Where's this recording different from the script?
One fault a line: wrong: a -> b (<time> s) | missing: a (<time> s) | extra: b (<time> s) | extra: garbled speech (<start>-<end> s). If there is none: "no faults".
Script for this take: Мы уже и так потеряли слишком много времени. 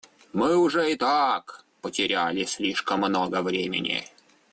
no faults